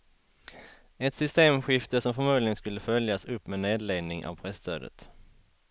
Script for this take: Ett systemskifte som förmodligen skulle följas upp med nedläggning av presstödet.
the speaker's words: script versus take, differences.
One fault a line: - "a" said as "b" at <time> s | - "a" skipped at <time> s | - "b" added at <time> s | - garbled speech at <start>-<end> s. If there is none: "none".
none